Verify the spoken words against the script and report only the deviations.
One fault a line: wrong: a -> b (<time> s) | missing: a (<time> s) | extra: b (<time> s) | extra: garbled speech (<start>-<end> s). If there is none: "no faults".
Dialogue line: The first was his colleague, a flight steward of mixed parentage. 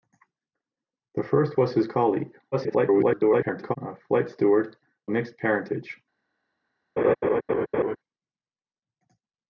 extra: garbled speech (2.5-3.8 s)
missing: of (4.8 s)